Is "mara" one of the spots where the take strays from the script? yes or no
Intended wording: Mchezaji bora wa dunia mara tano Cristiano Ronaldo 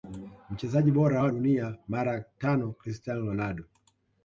no